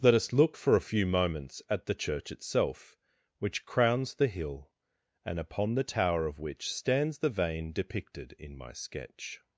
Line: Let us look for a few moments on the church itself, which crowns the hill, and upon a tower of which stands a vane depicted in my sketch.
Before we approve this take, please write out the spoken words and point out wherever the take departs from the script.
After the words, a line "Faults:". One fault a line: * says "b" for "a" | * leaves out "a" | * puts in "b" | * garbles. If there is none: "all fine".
Let us look for a few moments at the church itself, which crowns the hill, and upon the tower of which stands the vane depicted in my sketch.
Faults:
* says "at" for "on"
* says "the" for "a"
* says "the" for "a"